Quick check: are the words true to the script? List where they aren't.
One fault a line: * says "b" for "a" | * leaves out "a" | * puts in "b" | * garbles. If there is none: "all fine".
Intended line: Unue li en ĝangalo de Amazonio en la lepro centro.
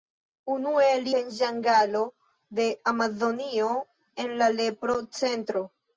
all fine